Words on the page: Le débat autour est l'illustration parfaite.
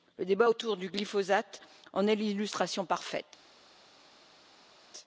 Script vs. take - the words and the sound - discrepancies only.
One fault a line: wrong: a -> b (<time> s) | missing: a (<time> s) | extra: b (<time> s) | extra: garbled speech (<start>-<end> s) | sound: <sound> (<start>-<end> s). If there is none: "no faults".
extra: du glyphosate en (0.8 s)